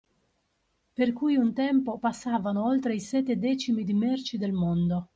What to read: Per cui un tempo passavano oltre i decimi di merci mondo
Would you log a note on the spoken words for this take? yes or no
yes